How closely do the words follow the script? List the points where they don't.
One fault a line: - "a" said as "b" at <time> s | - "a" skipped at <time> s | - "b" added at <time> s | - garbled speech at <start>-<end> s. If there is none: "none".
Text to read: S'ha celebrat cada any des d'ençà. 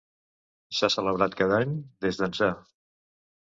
none